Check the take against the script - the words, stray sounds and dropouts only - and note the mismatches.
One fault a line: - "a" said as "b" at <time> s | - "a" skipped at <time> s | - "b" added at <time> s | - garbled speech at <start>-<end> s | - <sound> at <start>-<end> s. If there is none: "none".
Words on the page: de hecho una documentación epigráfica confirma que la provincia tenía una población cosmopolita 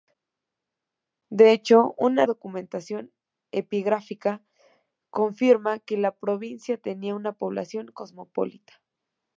none